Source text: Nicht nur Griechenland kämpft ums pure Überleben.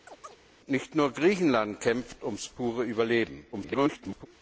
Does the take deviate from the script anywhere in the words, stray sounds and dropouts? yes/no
yes